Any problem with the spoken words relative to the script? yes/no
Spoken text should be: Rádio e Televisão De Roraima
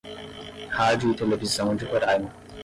no